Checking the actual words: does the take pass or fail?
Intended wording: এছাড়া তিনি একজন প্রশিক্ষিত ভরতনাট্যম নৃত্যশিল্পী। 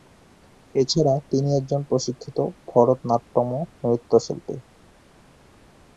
pass